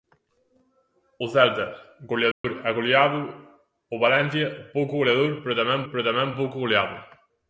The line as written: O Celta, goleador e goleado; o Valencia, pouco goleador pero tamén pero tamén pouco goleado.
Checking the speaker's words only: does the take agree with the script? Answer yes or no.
yes